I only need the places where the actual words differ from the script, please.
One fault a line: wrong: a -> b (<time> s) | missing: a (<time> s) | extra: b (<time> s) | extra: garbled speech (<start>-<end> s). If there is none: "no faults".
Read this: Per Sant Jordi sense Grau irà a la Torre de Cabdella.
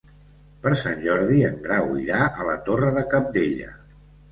wrong: sense -> en (1.5 s)